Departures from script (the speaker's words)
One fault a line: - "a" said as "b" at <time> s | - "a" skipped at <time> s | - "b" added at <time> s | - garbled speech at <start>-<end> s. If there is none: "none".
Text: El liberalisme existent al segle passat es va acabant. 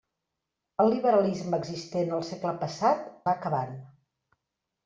- "es" skipped at 3.1 s